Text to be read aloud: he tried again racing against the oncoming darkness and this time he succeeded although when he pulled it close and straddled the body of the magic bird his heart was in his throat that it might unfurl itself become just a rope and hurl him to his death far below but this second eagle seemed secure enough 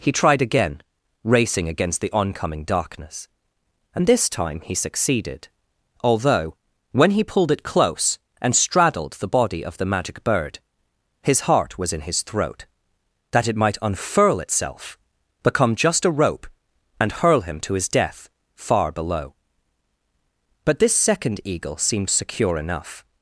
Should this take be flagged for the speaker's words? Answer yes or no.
no